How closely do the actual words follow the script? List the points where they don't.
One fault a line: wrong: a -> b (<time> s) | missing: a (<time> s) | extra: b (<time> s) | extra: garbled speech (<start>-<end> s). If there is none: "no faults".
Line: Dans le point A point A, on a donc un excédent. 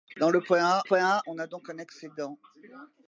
no faults